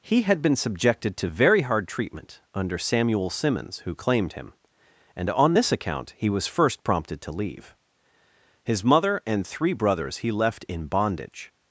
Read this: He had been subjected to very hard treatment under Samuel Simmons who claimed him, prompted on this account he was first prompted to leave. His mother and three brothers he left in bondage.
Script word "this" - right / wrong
right